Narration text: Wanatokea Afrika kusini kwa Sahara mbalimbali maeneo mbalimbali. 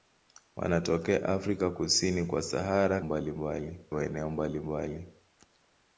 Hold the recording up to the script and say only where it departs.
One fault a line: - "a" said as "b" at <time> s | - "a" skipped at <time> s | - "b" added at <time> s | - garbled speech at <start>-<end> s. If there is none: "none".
none